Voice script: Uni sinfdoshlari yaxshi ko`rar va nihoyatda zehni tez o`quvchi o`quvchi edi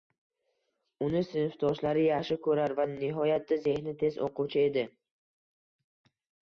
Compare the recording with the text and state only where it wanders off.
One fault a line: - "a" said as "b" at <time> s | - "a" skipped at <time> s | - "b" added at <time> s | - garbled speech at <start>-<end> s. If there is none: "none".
- "o`quvchi" skipped at 4.7 s